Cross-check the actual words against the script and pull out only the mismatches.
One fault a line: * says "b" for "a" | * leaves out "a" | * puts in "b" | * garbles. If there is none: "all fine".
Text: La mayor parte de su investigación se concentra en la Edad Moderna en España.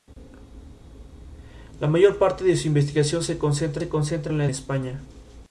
* puts in "se concentra"
* leaves out "Edad Moderna en"